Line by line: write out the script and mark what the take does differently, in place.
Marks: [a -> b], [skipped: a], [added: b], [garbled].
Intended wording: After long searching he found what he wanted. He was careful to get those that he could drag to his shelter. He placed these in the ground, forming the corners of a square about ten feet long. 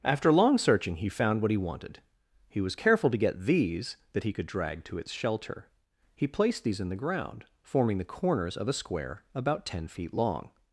After long searching he found what he wanted. He was careful to get [those -> these] that he could drag to [his -> its] shelter. He placed these in the ground, forming the corners of a square about ten feet long.